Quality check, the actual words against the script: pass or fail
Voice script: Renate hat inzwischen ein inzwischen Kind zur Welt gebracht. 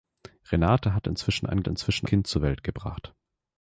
pass